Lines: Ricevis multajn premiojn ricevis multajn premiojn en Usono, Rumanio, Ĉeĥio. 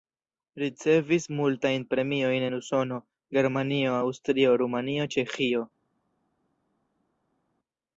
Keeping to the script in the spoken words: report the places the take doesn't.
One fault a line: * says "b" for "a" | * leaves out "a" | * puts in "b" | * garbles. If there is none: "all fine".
* says "en Usono Germanio Aŭstrio" for "ricevis multajn premiojn en Usono"